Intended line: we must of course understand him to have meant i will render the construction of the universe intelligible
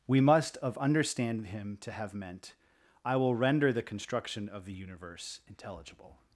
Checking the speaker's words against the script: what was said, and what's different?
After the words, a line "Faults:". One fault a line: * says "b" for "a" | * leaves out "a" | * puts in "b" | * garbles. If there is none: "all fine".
we must of understand him to have meant i will render the construction of the universe intelligible
Faults:
* leaves out "course"